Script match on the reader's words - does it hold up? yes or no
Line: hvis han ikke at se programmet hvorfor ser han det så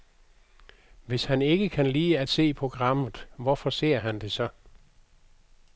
no